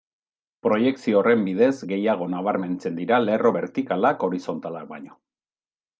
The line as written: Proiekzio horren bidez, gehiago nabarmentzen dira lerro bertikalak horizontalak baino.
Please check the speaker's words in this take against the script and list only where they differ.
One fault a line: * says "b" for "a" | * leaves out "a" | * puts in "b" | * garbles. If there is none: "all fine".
all fine